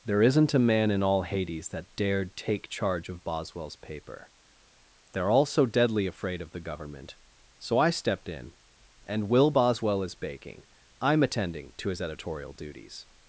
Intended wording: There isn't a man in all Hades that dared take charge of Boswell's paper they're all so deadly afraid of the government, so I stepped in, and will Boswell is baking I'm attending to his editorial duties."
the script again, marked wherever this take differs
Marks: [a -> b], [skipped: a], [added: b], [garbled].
There isn't a man in all Hades that dared take charge of Boswell's paper they're all so deadly afraid of the government, so I stepped in, and will Boswell is baking I'm attending to his editorial duties."